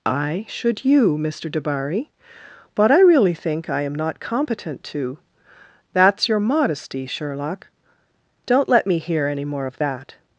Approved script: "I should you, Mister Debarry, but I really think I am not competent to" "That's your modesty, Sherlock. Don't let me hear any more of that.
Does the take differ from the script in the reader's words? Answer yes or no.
no